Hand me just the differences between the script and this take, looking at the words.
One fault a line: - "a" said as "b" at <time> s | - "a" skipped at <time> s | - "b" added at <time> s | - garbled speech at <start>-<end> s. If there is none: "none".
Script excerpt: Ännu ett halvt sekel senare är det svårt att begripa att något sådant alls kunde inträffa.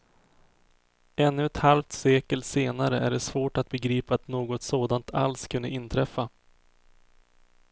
none